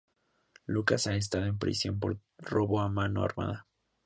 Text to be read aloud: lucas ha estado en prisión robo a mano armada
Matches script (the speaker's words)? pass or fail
fail